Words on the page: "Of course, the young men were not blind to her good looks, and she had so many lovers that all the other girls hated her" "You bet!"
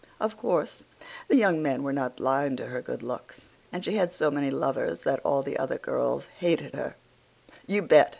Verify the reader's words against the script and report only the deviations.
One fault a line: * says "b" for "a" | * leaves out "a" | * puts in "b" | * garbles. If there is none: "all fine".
all fine